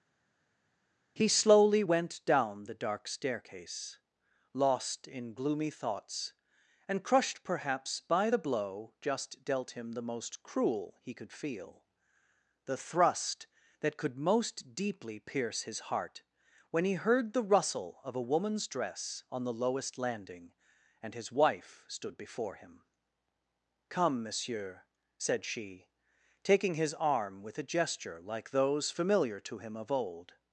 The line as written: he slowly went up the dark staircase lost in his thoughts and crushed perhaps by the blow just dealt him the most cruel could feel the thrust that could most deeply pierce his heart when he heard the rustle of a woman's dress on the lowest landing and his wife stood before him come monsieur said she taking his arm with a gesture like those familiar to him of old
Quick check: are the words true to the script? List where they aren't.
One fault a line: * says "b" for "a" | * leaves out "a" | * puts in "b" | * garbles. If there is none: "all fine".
* says "down" for "up"
* says "gloomy" for "his"
* puts in "he"